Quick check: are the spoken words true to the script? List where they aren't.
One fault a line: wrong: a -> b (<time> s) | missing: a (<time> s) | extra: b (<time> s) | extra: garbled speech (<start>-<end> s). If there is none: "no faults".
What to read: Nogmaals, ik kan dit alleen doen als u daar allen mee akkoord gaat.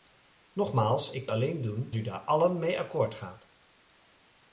missing: kan dit (1.3 s)
missing: als (1.9 s)